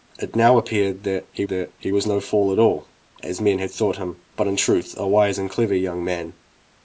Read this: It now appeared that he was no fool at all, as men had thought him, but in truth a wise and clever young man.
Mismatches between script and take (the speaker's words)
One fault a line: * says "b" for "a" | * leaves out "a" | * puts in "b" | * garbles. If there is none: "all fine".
* puts in "that he"